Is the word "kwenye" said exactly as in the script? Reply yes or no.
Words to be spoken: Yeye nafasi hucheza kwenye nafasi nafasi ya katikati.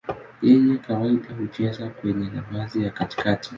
yes